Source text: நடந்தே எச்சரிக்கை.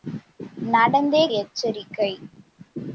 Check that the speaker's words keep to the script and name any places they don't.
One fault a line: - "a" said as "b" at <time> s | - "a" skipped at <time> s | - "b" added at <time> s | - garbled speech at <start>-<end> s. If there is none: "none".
none